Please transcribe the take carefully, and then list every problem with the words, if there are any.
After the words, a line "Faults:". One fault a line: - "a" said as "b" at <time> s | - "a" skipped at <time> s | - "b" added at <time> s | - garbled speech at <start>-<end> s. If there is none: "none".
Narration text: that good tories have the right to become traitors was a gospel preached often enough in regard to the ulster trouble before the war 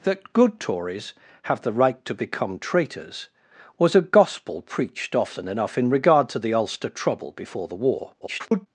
that good tories have the right to become traitors was a gospel preached often enough in regard to the ulster trouble before the war [garbled]
Faults:
- garbled speech at 8.2-8.7 s